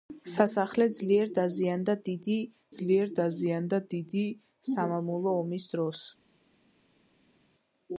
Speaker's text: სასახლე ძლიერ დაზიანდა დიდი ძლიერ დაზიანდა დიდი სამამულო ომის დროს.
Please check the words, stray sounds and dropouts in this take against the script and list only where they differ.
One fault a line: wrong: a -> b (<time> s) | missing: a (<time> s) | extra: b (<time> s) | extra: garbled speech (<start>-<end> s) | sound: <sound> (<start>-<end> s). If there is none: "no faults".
no faults